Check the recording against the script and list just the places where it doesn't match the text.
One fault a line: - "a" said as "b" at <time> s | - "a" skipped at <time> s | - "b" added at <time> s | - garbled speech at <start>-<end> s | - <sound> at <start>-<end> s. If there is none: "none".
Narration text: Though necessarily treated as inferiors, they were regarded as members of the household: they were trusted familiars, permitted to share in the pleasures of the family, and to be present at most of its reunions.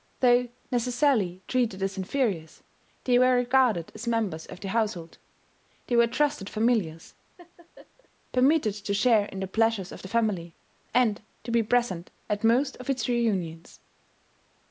- laugh at 7.4-8.1 s